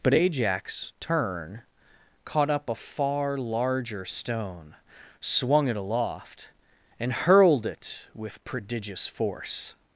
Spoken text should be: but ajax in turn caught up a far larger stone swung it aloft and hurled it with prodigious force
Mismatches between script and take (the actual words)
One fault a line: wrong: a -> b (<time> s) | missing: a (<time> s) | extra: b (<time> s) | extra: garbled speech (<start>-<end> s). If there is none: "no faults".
missing: in (0.9 s)